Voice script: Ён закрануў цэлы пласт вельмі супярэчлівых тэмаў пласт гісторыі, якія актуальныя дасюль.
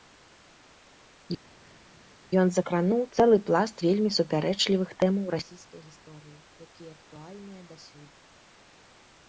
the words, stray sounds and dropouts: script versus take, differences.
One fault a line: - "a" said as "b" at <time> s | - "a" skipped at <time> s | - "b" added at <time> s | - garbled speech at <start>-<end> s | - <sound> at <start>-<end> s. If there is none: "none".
- "пласт" said as "расійскай" at 5.4 s